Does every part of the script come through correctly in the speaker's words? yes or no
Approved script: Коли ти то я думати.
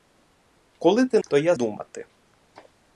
yes